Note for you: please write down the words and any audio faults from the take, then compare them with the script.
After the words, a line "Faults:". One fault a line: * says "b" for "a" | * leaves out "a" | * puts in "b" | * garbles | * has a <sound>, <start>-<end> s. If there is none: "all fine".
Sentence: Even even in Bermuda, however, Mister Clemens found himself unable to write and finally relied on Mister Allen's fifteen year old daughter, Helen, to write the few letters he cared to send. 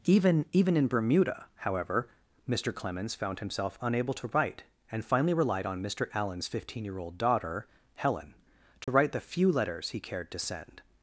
Even even in Bermuda, however, Mister Clemens found himself unable to write and finally relied on Mister Allen's fifteen year old daughter, Helen, to write the few letters he cared to send.
Faults:
* has a dropout, 8.8-8.9 s